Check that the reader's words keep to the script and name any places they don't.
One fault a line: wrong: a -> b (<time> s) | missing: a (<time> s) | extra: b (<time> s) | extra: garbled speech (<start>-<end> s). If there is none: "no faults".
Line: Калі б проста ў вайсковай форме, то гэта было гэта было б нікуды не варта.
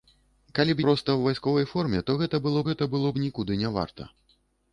no faults